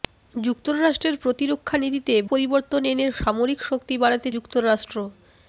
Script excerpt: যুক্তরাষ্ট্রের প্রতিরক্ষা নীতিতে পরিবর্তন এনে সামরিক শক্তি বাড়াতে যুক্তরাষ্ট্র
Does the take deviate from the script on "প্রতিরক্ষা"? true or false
false